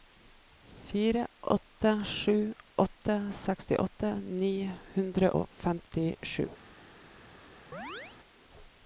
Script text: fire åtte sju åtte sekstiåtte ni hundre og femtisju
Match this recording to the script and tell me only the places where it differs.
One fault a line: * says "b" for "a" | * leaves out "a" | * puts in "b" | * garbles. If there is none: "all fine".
all fine